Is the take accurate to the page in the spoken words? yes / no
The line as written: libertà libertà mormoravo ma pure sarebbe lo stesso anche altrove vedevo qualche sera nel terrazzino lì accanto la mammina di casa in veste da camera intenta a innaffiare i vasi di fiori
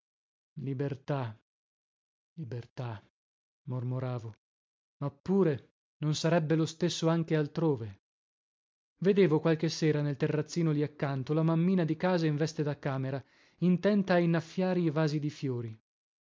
no